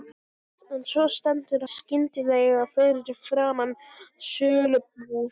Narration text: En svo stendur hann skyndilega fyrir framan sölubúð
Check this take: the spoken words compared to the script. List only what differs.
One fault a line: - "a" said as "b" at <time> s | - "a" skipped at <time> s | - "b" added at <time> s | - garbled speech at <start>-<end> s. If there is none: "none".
- "hann" skipped at 1.6 s